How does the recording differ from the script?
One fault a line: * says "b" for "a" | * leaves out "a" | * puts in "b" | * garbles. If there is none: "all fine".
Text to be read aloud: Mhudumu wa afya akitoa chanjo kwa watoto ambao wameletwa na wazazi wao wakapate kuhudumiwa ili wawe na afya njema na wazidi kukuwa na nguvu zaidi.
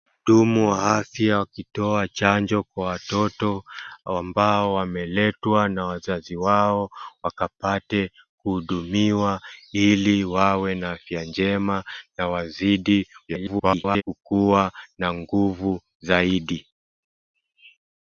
* garbles